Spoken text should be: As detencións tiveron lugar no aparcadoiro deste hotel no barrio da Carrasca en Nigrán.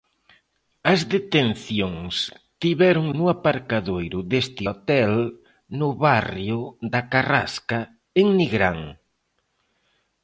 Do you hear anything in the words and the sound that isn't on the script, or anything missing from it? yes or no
yes